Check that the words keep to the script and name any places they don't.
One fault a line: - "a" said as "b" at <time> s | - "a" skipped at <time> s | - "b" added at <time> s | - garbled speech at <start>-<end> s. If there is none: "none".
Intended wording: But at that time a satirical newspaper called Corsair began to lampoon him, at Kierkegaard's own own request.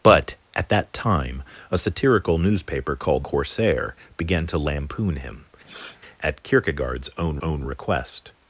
none